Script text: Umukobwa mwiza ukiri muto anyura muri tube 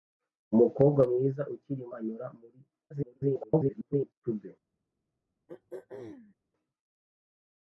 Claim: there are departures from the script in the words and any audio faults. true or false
true